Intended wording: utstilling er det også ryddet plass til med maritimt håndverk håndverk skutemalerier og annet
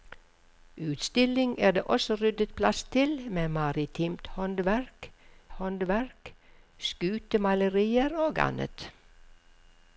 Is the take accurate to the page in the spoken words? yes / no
yes